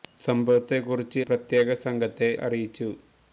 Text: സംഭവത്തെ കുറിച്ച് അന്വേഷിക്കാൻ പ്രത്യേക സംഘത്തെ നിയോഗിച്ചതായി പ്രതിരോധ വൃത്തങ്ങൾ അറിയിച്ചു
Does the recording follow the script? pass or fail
fail